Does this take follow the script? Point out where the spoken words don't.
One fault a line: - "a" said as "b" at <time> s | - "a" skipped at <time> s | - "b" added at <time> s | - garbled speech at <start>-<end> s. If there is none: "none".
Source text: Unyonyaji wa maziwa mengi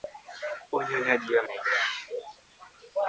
- "maziwa" skipped at 1.4 s